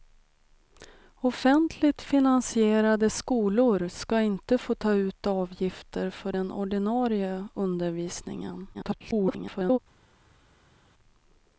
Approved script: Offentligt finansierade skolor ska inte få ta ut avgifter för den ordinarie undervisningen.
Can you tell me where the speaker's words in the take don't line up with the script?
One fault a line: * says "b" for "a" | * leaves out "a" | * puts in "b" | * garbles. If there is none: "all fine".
* garbles